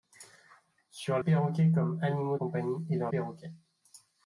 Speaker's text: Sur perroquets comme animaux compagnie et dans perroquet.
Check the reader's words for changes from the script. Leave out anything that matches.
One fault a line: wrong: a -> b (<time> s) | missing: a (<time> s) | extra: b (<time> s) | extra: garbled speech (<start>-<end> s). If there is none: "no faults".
no faults